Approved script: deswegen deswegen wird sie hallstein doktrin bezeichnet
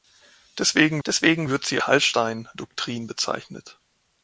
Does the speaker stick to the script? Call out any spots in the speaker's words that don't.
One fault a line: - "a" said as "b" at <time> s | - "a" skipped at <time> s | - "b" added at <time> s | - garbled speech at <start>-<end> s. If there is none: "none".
none